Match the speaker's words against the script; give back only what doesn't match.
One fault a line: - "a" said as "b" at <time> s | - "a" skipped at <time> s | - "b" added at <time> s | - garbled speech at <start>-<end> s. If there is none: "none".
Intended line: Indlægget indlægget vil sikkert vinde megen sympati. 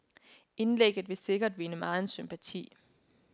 - "indlægget" skipped at 1.1 s